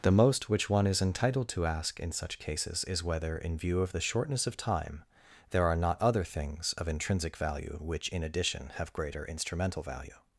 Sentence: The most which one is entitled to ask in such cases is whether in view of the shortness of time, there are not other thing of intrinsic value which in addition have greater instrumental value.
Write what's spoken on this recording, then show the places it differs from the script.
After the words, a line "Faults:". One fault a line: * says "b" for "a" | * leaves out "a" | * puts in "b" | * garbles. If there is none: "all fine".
The most which one is entitled to ask in such cases is whether in view of the shortness of time, there are not other things of intrinsic value which in addition have greater instrumental value.
Faults:
* says "things" for "thing"